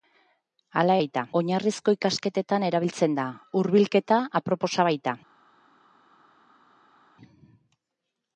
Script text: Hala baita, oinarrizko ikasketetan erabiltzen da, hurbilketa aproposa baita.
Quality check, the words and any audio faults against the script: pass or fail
pass